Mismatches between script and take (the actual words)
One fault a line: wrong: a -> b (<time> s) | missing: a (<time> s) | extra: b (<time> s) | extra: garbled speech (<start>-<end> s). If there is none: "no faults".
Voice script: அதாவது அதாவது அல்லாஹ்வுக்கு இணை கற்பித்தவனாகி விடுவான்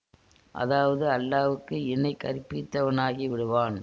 missing: அதாவது (1.1 s)